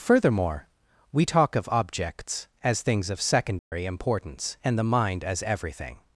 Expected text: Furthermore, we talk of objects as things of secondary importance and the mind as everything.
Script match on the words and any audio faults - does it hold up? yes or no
no